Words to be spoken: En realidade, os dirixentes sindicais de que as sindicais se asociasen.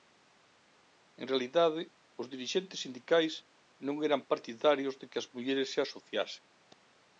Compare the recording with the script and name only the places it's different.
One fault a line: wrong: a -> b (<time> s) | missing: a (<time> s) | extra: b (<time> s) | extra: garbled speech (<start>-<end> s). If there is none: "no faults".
extra: non eran partidarios (3.9 s)
wrong: sindicais -> mulleres (5.3 s)